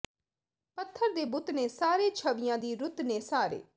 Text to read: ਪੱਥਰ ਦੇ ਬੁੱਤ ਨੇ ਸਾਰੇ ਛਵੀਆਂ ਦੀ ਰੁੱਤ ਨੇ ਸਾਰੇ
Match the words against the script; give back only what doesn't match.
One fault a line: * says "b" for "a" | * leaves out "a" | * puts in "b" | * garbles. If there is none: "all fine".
all fine